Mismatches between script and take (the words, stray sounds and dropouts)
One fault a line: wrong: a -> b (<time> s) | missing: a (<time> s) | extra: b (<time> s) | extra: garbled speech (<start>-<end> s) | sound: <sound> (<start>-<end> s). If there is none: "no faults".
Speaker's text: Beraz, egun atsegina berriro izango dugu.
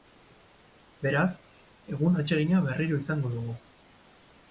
no faults